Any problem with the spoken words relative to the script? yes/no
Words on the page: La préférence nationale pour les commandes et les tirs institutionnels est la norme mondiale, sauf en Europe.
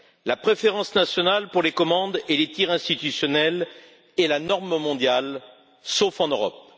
no